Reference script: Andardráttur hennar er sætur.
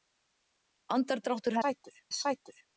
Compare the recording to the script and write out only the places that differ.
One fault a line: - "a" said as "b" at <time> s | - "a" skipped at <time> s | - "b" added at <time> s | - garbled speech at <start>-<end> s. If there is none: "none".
- "hennar" said as "sætur" at 1.6 s